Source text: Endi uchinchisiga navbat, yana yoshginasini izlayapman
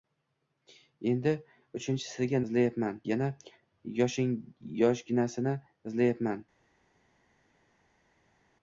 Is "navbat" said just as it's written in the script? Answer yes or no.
no